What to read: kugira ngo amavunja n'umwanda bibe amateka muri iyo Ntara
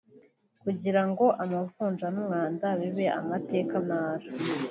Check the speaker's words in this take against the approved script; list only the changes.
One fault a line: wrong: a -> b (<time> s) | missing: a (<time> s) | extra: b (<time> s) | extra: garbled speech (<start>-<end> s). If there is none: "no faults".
missing: muri iyo (3.7 s)